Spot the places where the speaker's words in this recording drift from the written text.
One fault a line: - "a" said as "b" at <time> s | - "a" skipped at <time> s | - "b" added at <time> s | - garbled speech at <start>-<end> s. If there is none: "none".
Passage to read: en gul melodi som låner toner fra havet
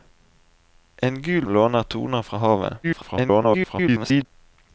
- "melodi som" skipped at 1.4 s
- garbled speech at 2.8-4.3 s